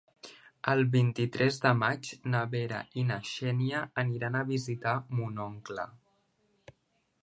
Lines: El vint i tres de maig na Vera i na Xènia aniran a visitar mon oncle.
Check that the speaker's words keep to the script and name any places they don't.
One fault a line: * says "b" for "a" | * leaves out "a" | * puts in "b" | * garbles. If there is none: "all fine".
all fine